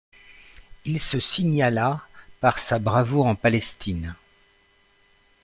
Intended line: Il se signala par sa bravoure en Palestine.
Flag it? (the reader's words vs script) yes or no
no